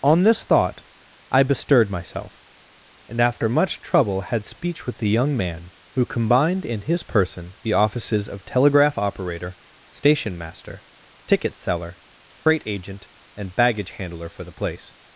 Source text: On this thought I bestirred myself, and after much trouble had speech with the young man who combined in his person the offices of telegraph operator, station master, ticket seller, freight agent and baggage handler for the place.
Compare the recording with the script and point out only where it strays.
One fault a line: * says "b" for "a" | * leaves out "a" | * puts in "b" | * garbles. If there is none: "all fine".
all fine